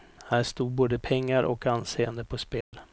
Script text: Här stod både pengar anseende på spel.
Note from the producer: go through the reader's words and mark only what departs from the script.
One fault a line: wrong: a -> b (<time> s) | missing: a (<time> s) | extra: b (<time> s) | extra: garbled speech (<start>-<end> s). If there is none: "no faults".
extra: och (1.4 s)